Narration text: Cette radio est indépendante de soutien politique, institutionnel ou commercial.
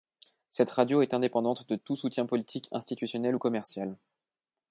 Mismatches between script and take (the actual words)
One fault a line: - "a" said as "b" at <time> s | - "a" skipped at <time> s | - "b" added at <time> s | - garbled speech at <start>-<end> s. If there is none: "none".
- "tout" added at 1.7 s